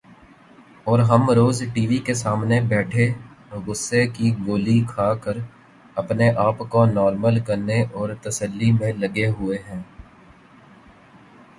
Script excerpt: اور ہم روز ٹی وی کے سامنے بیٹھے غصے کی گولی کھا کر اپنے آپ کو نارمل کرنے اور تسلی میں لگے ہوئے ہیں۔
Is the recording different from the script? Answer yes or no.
no